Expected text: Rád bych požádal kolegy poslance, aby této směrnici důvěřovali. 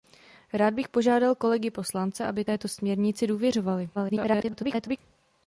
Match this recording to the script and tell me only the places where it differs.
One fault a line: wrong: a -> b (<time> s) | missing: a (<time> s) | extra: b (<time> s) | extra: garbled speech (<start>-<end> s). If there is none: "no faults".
extra: garbled speech (3.9-5.0 s)